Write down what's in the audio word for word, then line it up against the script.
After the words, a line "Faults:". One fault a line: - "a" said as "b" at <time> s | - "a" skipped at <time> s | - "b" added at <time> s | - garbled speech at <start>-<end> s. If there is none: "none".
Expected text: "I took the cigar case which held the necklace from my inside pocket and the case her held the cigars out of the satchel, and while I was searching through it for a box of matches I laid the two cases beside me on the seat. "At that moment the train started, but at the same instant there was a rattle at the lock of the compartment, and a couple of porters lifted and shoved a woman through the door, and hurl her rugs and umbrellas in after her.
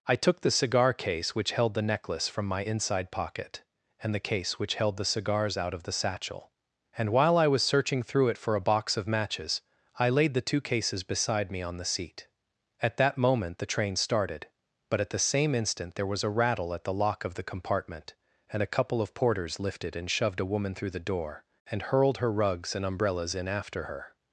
"I took the cigar case which held the necklace from my inside pocket and the case which held the cigars out of the satchel, and while I was searching through it for a box of matches I laid the two cases beside me on the seat. "At that moment the train started, but at the same instant there was a rattle at the lock of the compartment, and a couple of porters lifted and shoved a woman through the door, and hurled her rugs and umbrellas in after her.
Faults:
- "her" said as "which" at 4.6 s
- "hurl" said as "hurled" at 21.8 s